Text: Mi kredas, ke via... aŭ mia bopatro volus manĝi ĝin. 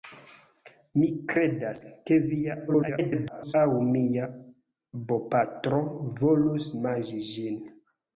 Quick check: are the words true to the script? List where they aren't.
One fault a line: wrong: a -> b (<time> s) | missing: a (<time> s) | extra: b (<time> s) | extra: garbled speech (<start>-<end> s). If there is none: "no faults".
extra: garbled speech (2.7-3.5 s)